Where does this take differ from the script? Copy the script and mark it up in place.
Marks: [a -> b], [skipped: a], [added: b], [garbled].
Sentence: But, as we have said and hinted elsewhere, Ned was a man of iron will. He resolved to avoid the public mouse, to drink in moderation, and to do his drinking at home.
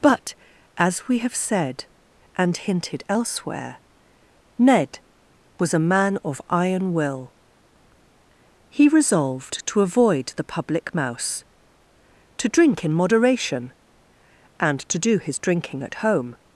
But, as we have said and hinted elsewhere, Ned was a man of iron will. He resolved to avoid the public mouse, to drink in moderation, and to do his drinking at home.